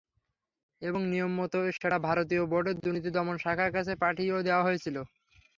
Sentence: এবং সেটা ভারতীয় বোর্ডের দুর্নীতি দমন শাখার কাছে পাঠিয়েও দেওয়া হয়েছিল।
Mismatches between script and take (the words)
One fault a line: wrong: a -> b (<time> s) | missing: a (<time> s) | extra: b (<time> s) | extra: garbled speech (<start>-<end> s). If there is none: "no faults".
extra: নিয়মমতো (1.1 s)